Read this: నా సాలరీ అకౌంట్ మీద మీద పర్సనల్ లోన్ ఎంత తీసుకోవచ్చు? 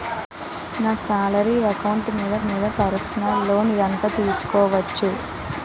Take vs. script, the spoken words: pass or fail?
pass